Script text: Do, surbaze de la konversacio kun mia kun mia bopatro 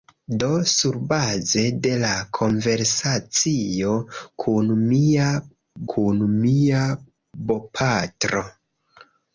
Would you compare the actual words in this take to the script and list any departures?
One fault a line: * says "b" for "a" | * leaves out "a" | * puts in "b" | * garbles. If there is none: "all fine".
all fine